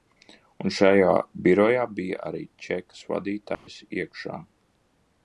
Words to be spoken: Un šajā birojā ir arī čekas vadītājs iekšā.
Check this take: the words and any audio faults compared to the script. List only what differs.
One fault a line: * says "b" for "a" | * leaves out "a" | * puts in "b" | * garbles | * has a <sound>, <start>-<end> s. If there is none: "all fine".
* says "bija" for "ir"
* has a dropout, 3.5-3.7 s